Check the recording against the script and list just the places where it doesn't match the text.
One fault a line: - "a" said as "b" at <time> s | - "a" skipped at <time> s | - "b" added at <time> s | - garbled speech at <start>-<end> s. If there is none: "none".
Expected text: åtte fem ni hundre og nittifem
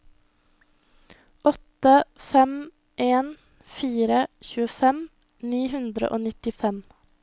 - "en fire tjuefem" added at 2.9 s